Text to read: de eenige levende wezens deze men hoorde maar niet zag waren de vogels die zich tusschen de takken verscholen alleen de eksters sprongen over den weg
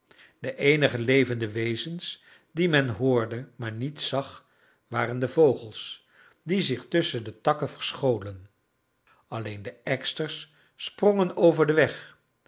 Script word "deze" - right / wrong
wrong